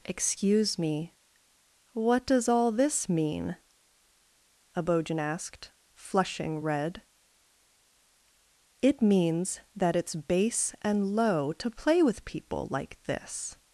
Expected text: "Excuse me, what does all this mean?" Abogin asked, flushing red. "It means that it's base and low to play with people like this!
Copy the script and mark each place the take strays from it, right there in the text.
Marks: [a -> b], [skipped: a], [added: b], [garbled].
"Excuse me, what does all this mean?" Abogin asked, flushing red. "It means that it's base and low to play with people like this!